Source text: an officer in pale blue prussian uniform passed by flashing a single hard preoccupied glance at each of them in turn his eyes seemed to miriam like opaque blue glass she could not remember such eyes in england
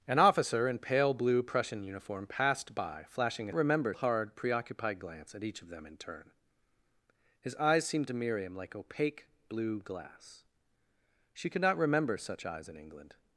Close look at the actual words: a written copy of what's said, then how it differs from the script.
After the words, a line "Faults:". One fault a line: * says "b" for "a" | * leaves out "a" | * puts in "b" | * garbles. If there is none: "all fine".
an officer in pale blue prussian uniform passed by flashing a remember hard preoccupied glance at each of them in turn his eyes seemed to miriam like opaque blue glass she could not remember such eyes in england
Faults:
* says "remember" for "single"